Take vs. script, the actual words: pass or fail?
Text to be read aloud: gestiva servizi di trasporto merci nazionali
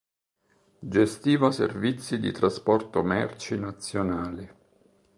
pass